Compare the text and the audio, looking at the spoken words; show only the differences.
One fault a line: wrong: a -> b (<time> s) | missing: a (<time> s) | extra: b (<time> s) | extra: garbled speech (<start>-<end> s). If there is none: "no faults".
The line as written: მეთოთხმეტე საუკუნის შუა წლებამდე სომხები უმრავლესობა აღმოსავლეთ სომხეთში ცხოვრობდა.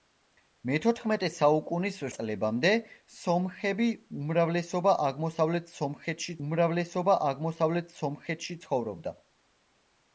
missing: შუა (2.0 s)
extra: უმრავლესობა აღმოსავლეთ სომხეთში (6.4 s)